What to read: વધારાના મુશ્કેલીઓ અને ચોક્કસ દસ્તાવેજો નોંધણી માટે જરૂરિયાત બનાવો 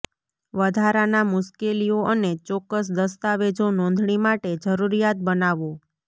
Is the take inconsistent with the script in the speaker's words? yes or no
no